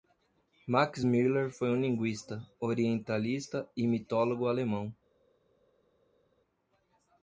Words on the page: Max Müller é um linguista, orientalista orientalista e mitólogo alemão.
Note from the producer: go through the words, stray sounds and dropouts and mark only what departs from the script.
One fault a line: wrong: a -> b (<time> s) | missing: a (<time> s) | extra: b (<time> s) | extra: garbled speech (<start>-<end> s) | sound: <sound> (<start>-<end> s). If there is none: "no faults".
wrong: é -> foi (1.5 s)
missing: orientalista (3.7 s)